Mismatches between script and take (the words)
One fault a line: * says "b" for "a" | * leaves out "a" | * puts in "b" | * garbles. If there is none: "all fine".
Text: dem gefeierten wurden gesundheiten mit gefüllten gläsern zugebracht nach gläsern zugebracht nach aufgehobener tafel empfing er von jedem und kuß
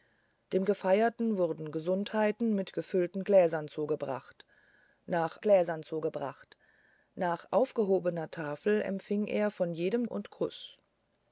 all fine